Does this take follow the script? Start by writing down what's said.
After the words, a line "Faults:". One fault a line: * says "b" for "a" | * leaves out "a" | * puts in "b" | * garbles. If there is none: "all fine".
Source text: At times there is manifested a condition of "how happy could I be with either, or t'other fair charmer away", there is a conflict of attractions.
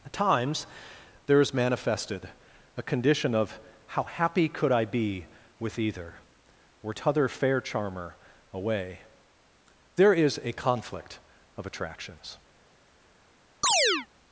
At times there is manifested a condition of "how happy could I be with either, or t'other fair charmer away", there is a conflict of attractions.
Faults:
all fine